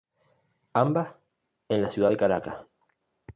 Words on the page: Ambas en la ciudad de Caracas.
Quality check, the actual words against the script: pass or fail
pass